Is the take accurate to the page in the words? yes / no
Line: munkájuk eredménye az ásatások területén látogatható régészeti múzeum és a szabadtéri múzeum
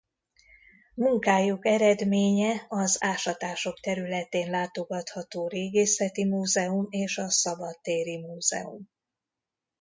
yes